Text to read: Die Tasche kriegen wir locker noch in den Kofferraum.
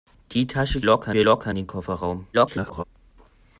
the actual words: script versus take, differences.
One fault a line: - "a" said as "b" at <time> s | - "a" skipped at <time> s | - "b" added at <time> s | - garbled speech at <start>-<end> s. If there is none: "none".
- "kriegen" said as "locker" at 0.8 s
- "noch in" skipped at 1.5 s
- garbled speech at 2.3-2.8 s